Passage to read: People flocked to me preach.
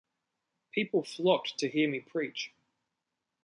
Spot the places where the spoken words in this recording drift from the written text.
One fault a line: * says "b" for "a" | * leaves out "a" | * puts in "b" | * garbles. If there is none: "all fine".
* puts in "hear"